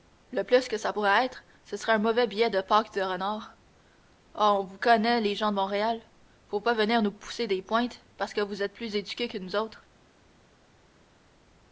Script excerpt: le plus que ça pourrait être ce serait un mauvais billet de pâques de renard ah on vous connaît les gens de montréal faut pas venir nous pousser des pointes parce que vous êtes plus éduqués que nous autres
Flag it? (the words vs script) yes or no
no